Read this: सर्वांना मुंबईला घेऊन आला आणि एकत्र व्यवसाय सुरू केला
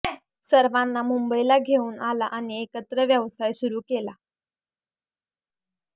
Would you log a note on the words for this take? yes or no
no